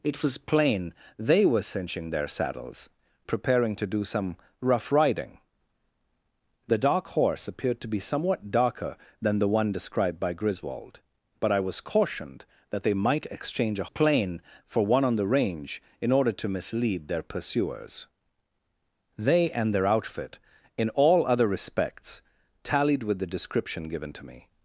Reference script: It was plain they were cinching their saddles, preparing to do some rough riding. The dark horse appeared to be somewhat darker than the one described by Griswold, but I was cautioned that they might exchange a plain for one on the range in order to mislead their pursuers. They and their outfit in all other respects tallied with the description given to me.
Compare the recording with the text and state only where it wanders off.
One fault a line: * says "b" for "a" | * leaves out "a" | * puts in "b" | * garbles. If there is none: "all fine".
all fine